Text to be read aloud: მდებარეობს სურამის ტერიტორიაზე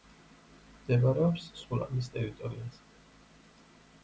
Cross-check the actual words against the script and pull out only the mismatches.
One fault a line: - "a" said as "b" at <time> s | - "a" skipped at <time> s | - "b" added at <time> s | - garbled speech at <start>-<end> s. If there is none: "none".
none